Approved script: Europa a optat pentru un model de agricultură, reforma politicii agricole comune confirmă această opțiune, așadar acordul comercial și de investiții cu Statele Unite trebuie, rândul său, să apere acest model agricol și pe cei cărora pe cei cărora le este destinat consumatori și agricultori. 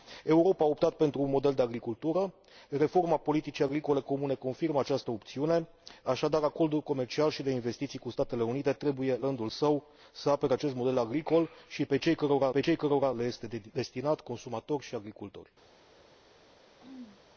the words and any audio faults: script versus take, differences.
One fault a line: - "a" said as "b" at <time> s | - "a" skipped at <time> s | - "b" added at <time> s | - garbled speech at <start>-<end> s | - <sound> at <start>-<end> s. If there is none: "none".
- throat clearing at 16.8-17.2 s